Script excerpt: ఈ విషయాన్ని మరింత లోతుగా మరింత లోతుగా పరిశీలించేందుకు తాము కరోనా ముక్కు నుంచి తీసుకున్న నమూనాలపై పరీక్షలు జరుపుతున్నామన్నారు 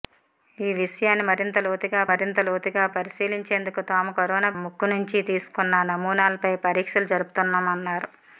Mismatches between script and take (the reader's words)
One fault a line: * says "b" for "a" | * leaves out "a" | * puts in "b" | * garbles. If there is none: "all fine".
all fine